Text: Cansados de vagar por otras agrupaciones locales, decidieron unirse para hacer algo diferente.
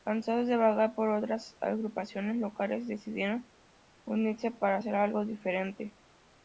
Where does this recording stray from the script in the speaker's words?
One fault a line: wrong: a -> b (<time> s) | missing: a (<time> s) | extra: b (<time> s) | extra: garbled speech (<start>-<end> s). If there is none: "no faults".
no faults